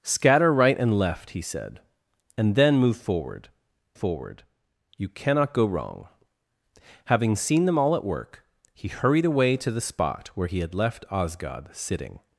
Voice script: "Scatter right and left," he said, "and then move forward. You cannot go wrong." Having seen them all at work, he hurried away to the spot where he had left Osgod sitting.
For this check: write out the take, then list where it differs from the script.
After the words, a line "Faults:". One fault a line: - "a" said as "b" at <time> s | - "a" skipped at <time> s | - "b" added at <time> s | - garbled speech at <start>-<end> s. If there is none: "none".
"Scatter right and left," he said, "and then move forward forward. You cannot go wrong." Having seen them all at work, he hurried away to the spot where he had left Osgod sitting.
Faults:
- "forward" added at 3.9 s